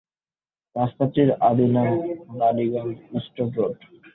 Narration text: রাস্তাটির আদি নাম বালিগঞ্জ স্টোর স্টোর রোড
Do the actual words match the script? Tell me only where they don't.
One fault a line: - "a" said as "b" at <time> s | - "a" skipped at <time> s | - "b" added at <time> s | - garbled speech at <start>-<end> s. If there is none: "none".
- "স্টোর" skipped at 3.5 s